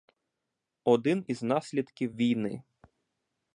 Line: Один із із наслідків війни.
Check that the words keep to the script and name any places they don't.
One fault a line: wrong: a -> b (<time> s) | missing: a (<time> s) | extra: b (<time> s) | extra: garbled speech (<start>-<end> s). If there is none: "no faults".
missing: із (1.4 s)